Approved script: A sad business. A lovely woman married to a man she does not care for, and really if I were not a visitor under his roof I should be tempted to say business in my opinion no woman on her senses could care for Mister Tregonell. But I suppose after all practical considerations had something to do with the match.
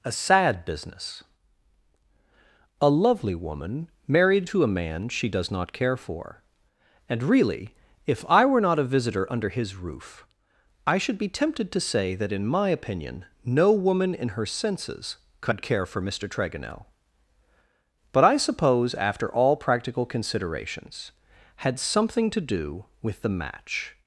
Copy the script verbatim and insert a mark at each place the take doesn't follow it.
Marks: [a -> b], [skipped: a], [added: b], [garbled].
A sad business. A lovely woman married to a man she does not care for, and really if I were not a visitor under his roof I should be tempted to say [business -> that] in my opinion no woman [on -> in] her senses could care for Mister Tregonell. But I suppose after all practical considerations had something to do with the match.